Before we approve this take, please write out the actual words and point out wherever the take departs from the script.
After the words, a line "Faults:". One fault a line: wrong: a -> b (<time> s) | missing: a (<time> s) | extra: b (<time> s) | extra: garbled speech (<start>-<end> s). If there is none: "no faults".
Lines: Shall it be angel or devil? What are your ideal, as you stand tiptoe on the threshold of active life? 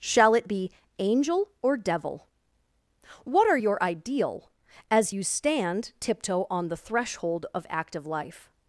Shall it be angel or devil? What are your ideal, as you stand tiptoe on the threshold of active life?
Faults:
no faults